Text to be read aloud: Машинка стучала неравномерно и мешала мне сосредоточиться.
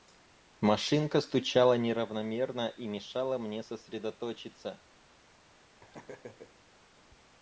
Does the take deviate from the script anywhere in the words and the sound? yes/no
yes